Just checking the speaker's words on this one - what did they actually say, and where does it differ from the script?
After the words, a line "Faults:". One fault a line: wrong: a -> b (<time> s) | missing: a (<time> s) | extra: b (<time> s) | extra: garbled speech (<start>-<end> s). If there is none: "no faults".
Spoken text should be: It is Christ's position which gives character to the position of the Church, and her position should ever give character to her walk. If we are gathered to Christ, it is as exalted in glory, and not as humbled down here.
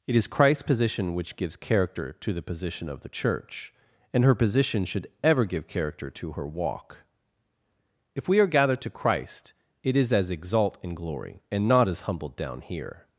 It is Christ's position which gives character to the position of the Church, and her position should ever give character to her walk. If we are gathered to Christ, it is as exalt in glory, and not as humbled down here.
Faults:
wrong: exalted -> exalt (10.3 s)